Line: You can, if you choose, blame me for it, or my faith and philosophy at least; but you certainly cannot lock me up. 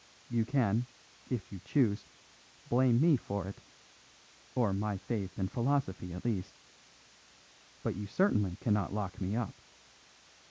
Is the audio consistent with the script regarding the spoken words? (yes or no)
yes